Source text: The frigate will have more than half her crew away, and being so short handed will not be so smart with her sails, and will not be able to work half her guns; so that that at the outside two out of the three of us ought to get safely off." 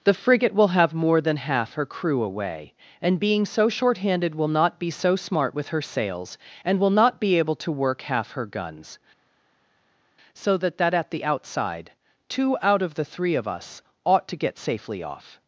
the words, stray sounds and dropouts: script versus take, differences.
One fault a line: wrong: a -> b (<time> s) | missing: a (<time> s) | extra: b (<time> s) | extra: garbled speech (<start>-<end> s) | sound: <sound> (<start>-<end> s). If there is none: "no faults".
no faults